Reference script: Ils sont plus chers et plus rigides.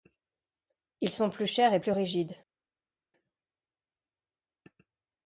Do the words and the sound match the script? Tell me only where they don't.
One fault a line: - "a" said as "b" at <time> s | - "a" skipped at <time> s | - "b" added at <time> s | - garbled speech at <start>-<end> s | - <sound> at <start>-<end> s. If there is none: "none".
none